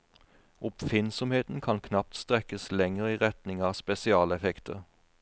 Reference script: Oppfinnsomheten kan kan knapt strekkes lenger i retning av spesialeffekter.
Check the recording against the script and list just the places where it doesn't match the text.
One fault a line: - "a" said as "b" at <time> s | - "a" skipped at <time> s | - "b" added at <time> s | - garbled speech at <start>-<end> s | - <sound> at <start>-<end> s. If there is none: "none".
- "kan" skipped at 1.8 s